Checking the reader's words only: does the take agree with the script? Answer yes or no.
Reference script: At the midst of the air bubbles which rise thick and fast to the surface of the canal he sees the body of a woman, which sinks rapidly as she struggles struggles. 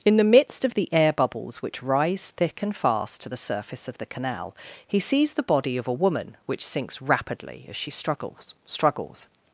no